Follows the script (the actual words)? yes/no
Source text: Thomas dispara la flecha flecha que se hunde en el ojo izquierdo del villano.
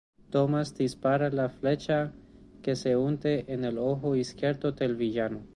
no